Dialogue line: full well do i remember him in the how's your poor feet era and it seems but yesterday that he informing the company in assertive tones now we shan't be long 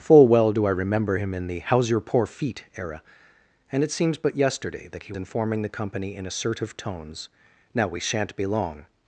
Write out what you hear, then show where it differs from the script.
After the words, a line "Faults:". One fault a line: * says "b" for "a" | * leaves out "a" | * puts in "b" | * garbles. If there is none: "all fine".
full well do i remember him in the how's your poor feet era and it seems but yesterday that he informing the company in assertive tones now we shan't be long
Faults:
all fine